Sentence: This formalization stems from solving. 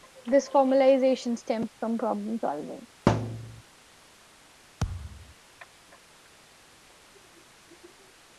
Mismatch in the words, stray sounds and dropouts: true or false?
true